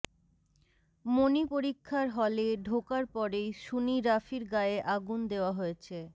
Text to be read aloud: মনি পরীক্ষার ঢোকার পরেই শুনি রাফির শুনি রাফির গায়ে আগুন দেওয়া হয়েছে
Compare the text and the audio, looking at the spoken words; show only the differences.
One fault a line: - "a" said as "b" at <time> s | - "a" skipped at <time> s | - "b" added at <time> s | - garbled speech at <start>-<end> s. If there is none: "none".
- "হলে" added at 2.1 s
- "শুনি রাফির" skipped at 4.4 s